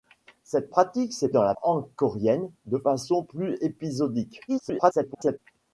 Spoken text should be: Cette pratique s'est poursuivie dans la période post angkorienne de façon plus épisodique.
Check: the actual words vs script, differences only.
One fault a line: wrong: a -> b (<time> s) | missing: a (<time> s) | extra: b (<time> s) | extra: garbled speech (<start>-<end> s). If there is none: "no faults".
missing: poursuivie (1.3 s)
missing: période post (1.5 s)
extra: garbled speech (4.5-5.4 s)